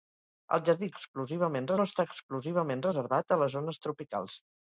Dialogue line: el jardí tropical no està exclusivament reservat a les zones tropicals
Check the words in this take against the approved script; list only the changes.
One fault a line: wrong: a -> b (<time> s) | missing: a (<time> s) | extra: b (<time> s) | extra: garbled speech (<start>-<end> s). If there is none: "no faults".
wrong: tropical -> exclusivament (1.0 s)